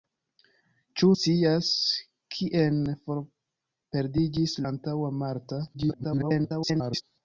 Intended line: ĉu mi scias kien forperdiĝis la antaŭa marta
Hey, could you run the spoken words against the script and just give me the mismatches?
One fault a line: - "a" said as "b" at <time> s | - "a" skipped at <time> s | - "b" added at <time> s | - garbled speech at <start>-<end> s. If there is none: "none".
- "mi" skipped at 1.1 s
- "la" skipped at 4.6 s
- garbled speech at 5.7-7.0 s